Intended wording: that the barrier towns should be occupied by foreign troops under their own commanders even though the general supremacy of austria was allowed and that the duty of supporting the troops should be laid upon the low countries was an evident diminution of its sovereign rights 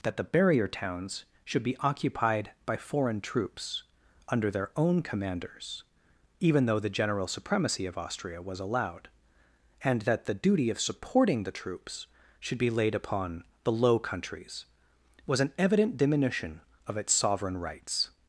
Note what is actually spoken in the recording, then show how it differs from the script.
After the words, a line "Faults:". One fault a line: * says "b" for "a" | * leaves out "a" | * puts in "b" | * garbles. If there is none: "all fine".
that the barrier towns should be occupied by foreign troops under their own commanders even though the general supremacy of austria was allowed and that the duty of supporting the troops should be laid upon the low countries was an evident diminution of its sovereign rights
Faults:
all fine